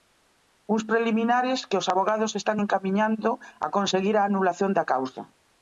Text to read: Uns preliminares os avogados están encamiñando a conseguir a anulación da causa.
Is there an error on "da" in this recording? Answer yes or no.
no